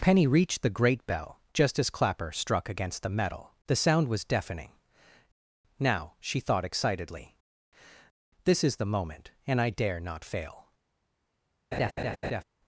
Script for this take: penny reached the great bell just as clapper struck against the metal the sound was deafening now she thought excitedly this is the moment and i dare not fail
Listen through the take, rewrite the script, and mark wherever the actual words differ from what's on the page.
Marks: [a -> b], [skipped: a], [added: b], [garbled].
penny reached the great bell just as clapper struck against the metal the sound was deafening now she thought excitedly this is the moment and i dare not fail